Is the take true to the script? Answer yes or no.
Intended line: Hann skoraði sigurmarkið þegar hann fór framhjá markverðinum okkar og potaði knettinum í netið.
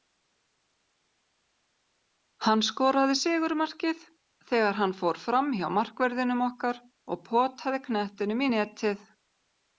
yes